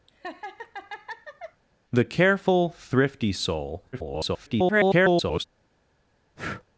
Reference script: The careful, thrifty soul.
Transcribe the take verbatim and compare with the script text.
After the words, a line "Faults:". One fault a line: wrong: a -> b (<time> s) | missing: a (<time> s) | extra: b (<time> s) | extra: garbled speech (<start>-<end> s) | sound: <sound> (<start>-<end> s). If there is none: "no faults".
The careful, thrifty soul. [garbled]
Faults:
sound: laugh (0.1-1.6 s)
extra: garbled speech (3.9-5.4 s)
sound: breath (6.4-6.6 s)